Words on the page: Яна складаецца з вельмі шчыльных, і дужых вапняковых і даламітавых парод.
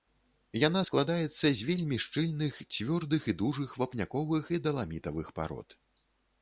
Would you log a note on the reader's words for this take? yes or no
yes